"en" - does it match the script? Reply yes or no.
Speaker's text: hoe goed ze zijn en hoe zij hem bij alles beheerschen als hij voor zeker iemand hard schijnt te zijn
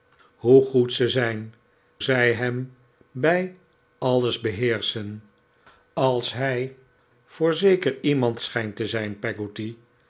no